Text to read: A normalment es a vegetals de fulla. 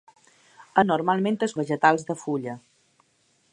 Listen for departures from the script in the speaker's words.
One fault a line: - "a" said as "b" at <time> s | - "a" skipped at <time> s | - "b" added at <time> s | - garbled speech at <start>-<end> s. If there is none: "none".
none